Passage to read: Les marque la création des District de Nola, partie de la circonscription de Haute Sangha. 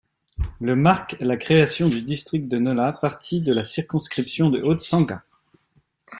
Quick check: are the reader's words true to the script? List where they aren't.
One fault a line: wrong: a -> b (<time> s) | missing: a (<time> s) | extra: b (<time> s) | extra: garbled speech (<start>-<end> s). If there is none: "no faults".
wrong: Les -> Le (0.6 s)
wrong: des -> du (1.9 s)